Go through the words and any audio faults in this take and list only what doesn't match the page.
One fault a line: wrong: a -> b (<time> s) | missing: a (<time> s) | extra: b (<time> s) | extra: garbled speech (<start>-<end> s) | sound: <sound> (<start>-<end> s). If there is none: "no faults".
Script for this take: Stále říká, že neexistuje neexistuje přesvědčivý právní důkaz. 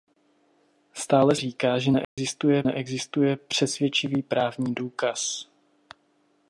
sound: dropout (2.0-2.2 s)